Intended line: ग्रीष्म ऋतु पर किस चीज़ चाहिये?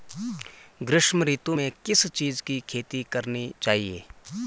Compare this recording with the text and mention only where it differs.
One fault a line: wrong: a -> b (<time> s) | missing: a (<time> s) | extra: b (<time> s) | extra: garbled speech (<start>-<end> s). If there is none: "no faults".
wrong: पर -> में (1.5 s)
extra: की खेती करनी (2.4 s)